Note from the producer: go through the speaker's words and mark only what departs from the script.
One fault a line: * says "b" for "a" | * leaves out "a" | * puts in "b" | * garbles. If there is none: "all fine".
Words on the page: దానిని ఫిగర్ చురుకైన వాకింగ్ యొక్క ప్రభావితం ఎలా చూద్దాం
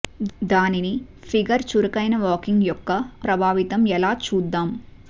all fine